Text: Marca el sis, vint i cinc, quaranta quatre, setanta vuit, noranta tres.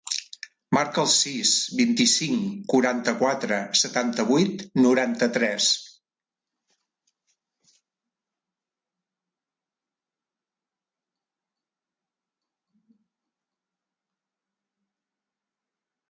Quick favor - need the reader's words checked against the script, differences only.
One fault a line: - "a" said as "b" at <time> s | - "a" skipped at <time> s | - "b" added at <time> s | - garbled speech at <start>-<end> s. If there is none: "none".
none